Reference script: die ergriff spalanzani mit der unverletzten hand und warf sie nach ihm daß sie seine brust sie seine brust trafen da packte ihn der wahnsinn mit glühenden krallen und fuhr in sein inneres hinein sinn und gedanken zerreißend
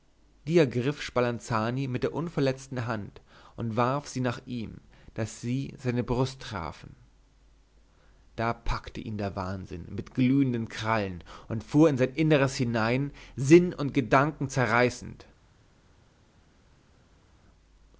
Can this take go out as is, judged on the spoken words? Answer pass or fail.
fail